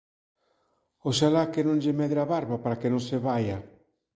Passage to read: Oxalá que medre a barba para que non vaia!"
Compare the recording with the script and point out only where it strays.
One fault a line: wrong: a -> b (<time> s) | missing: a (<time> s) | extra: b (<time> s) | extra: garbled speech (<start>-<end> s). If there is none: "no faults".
extra: non lle (1.7 s)
extra: se (3.1 s)